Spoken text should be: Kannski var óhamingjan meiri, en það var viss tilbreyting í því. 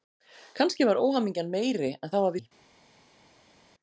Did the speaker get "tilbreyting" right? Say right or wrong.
wrong